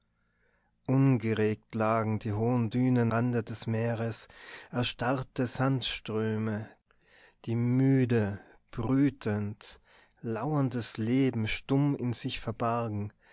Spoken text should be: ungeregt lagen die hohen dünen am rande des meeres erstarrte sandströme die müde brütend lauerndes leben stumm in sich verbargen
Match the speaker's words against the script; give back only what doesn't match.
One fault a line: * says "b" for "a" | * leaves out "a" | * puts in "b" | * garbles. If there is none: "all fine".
* leaves out "am"